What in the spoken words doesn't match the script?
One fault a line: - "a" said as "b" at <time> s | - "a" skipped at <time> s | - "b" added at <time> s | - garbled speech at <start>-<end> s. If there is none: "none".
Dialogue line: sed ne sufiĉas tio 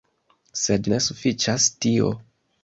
none